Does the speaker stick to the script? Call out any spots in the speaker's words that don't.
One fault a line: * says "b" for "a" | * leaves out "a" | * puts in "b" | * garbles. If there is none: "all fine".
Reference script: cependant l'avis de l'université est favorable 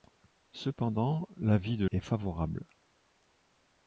* leaves out "l'université"